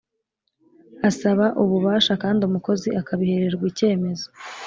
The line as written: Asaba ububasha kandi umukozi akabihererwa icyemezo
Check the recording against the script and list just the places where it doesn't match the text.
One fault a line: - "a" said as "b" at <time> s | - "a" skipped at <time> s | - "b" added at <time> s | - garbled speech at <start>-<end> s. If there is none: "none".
none